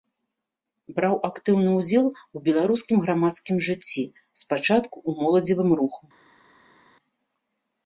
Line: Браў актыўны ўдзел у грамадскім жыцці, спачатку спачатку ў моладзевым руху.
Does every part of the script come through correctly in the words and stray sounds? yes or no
no